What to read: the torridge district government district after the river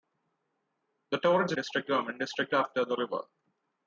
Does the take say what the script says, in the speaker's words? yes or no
yes